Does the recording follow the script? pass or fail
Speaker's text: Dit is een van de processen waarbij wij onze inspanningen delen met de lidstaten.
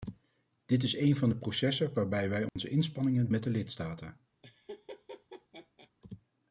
fail